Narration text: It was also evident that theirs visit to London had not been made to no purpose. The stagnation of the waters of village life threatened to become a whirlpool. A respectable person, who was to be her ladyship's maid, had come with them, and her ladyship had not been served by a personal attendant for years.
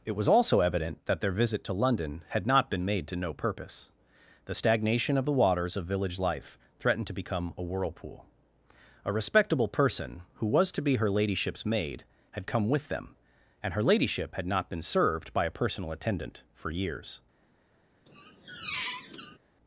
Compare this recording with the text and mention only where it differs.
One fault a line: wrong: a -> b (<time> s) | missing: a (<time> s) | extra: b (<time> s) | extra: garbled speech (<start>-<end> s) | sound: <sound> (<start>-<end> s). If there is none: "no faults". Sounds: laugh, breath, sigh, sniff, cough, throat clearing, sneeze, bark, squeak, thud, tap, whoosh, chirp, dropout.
wrong: theirs -> their (1.2 s)
sound: squeak (18.1-19.4 s)